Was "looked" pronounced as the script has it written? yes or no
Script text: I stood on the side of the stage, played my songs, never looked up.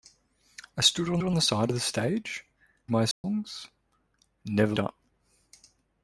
no